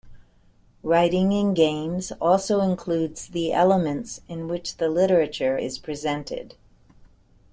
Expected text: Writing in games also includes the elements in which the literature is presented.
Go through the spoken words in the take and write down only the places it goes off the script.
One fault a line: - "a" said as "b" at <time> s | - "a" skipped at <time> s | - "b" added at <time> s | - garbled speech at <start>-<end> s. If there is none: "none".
none